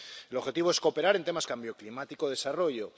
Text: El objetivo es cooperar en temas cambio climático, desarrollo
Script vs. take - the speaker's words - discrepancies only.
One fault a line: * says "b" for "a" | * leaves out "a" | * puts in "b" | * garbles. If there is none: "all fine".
all fine